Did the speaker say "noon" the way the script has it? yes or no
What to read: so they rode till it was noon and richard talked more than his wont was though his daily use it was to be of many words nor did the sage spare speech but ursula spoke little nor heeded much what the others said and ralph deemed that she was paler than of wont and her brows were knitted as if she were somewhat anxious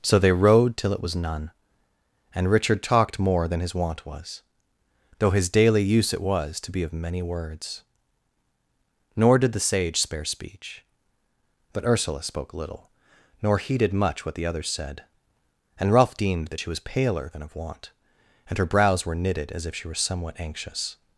no